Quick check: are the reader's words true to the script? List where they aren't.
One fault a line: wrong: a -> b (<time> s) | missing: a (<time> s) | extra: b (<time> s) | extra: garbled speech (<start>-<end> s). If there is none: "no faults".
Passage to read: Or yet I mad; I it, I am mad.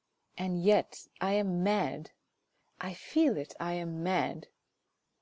wrong: Or -> And (0.3 s)
extra: am (1.3 s)
extra: feel (2.9 s)